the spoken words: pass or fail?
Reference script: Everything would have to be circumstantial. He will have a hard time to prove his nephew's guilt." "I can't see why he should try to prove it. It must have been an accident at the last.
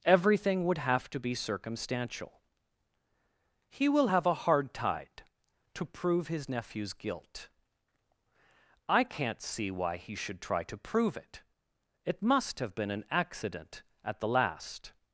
fail